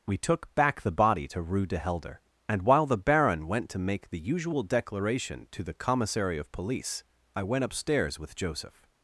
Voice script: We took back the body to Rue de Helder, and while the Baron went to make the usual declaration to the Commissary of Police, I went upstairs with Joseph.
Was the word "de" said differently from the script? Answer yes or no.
no